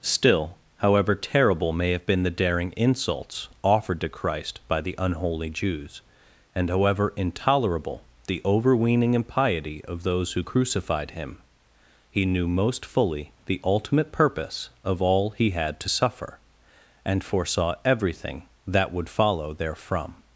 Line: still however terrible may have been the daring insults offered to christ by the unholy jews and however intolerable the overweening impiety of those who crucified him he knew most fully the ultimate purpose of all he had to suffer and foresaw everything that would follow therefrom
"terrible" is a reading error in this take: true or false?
false